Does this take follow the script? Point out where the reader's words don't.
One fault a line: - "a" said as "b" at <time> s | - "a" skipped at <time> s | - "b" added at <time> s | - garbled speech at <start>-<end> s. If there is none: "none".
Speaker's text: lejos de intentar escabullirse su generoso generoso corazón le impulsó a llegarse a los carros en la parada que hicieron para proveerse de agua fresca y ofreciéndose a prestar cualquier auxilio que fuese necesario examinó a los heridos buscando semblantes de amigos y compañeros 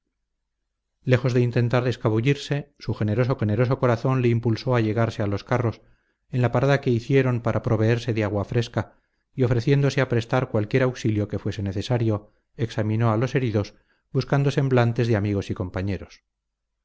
none